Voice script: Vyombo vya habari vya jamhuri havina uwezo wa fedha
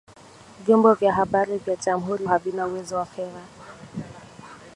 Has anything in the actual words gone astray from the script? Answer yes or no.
no